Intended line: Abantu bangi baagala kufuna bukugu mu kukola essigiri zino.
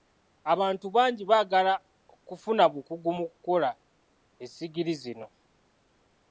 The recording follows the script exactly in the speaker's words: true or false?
true